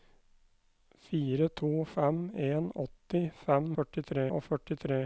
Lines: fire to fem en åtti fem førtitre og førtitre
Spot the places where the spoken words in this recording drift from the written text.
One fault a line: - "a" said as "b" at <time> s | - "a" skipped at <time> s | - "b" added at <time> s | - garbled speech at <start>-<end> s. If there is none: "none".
none